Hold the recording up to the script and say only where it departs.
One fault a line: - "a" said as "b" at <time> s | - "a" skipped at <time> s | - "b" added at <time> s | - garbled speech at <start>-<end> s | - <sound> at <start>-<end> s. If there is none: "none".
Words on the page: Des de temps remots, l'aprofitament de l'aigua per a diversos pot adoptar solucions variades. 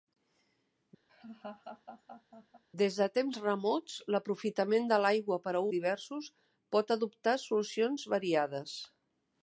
- laugh at 1.1-2.6 s